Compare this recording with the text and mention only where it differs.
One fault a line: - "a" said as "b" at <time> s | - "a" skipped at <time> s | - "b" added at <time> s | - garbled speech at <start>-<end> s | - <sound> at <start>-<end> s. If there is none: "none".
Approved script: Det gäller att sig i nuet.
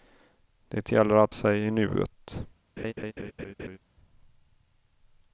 - laugh at 2.8-3.8 s